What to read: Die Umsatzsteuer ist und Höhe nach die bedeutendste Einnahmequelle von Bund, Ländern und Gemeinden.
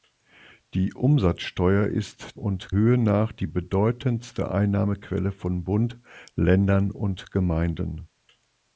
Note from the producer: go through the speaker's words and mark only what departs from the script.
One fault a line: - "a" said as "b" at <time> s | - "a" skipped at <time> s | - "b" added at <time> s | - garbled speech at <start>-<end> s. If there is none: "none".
none